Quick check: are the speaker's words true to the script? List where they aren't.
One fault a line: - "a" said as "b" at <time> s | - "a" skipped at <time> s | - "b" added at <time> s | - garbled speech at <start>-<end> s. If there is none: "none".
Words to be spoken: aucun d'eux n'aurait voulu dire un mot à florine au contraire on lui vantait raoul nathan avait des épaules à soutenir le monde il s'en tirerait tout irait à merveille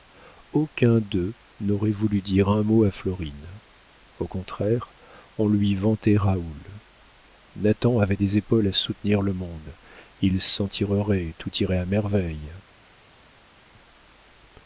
none